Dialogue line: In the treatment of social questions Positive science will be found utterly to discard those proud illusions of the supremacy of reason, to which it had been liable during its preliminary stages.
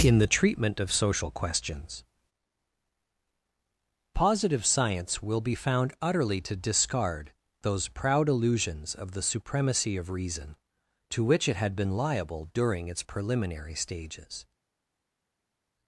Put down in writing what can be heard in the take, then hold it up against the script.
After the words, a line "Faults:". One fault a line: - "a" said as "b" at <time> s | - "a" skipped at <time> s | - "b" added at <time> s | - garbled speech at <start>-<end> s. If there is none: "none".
In the treatment of social questions Positive science will be found utterly to discard those proud illusions of the supremacy of reason, to which it had been liable during its preliminary stages.
Faults:
none